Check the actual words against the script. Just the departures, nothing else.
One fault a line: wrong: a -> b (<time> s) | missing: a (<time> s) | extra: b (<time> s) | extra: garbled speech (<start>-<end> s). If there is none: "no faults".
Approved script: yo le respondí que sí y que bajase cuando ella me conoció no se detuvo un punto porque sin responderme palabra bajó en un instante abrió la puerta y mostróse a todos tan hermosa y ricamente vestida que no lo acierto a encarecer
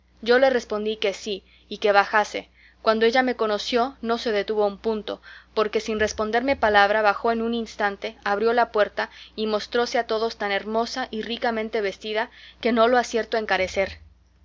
no faults